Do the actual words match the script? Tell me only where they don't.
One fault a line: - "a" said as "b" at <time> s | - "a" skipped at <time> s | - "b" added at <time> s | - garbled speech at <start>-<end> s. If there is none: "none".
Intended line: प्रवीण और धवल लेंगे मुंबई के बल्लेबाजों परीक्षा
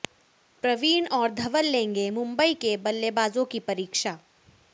- "की" added at 3.5 s